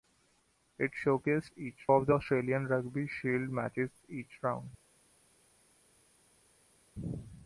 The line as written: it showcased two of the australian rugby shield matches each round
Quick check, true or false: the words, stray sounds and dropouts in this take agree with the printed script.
false